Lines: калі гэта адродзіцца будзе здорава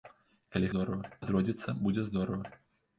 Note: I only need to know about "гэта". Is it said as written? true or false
false